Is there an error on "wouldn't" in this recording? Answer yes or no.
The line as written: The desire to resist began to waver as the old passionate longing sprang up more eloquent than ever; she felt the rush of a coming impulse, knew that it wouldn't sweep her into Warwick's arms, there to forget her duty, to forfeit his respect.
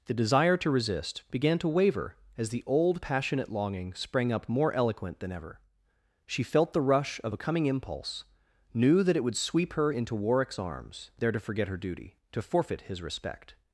yes